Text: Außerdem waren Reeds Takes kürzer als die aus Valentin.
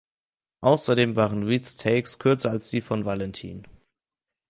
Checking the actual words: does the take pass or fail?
fail